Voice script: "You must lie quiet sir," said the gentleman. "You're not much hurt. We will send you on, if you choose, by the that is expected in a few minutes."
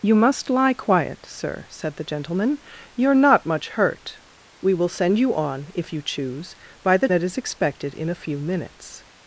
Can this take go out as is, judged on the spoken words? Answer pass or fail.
pass